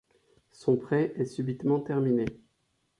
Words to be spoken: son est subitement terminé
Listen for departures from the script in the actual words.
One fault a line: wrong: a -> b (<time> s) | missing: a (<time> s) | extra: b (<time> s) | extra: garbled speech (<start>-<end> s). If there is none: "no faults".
extra: prêt (0.8 s)